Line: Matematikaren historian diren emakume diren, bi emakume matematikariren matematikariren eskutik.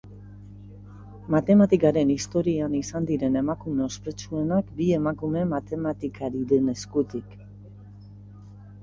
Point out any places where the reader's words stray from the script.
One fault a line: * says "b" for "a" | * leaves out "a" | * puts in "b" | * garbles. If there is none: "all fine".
* puts in "izan"
* says "ospetsuenak" for "diren"
* leaves out "matematikariren"